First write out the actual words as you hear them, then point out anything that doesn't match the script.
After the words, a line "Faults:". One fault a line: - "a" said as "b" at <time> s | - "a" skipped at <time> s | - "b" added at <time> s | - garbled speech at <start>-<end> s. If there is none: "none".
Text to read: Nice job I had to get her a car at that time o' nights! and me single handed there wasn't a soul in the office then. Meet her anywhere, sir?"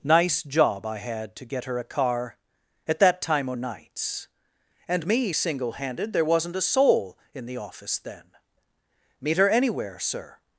Nice job I had to get her a car at that time o' nights! and me single handed there wasn't a soul in the office then. Meet her anywhere, sir?"
Faults:
none